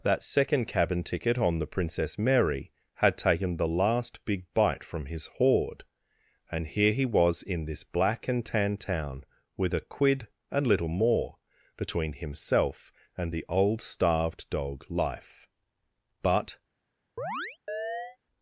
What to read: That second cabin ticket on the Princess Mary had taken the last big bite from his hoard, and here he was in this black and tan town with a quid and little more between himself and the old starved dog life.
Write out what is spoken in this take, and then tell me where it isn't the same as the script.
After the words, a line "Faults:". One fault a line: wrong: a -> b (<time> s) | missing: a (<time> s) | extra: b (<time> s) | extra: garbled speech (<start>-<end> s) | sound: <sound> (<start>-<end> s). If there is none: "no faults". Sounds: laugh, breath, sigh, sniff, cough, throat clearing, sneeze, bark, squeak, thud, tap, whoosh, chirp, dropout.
That second cabin ticket on the Princess Mary had taken the last big bite from his hoard, and here he was in this black and tan town with a quid and little more between himself and the old starved dog life. But
Faults:
extra: But (16.2 s)
sound: chirp (17.2-18.2 s)